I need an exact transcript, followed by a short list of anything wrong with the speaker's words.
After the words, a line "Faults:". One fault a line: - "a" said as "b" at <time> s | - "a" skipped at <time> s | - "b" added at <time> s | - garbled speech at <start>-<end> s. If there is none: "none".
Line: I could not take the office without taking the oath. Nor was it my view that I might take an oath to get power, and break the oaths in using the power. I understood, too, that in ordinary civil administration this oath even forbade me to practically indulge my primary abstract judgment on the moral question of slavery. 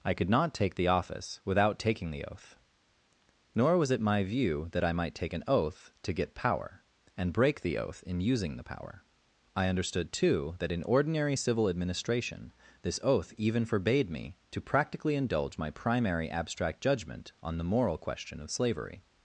I could not take the office without taking the oath. Nor was it my view that I might take an oath to get power, and break the oath in using the power. I understood, too, that in ordinary civil administration this oath even forbade me to practically indulge my primary abstract judgment on the moral question of slavery.
Faults:
- "oaths" said as "oath" at 7.8 s